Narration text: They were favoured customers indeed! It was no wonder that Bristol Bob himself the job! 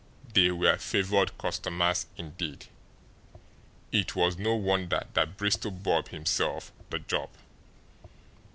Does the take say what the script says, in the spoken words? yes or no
yes